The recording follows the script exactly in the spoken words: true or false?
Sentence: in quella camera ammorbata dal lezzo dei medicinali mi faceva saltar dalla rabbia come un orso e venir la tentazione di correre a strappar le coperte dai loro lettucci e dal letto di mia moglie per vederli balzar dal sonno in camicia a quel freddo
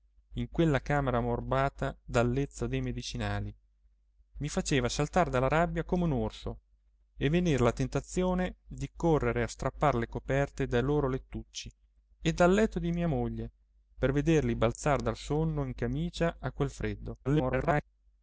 false